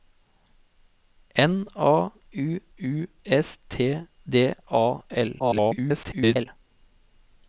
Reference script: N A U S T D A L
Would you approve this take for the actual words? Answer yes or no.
no